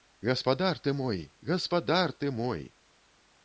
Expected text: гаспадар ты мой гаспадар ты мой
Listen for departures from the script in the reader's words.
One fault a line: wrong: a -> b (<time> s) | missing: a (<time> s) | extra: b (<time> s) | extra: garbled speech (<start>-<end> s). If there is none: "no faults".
no faults